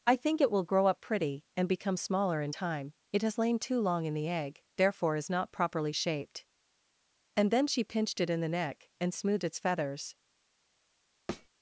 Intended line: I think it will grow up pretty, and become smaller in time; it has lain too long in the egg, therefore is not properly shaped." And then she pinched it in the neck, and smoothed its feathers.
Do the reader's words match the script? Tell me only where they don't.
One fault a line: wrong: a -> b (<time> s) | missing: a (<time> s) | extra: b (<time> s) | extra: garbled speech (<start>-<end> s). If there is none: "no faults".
no faults